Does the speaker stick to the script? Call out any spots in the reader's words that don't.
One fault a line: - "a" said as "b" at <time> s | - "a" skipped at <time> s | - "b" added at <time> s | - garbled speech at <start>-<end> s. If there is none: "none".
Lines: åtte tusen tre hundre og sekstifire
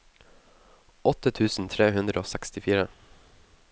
none